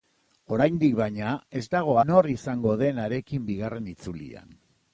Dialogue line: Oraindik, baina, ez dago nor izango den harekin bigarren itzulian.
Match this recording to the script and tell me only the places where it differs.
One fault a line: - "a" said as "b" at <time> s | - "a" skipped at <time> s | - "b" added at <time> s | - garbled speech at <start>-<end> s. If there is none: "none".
none